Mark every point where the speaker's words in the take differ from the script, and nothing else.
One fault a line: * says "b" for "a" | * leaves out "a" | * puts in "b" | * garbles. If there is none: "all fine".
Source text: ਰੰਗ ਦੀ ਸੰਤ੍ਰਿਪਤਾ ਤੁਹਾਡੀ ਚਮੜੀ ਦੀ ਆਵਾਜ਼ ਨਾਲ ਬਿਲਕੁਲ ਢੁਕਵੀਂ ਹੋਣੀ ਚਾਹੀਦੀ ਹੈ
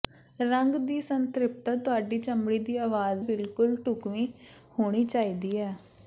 * leaves out "ਨਾਲ"